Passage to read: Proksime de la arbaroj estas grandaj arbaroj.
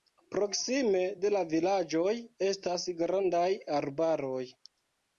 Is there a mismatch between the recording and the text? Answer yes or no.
yes